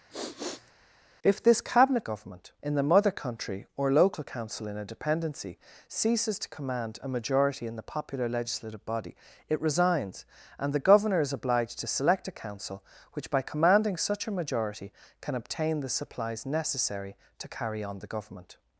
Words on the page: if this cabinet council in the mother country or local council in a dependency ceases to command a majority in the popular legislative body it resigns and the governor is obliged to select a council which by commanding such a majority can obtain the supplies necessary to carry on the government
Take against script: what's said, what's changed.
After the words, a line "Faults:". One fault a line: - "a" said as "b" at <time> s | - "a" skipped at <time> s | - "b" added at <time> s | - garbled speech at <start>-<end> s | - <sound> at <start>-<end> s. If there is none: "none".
if this cabinet government in the mother country or local council in a dependency ceases to command a majority in the popular legislative body it resigns and the governor is obliged to select a council which by commanding such a majority can obtain the supplies necessary to carry on the government
Faults:
- sniff at 0.1-0.7 s
- "council" said as "government" at 2.0 s